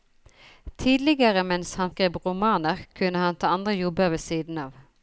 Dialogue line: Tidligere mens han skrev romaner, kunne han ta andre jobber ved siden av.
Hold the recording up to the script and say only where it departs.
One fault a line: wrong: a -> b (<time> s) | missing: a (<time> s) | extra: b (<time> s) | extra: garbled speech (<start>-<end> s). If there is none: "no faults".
no faults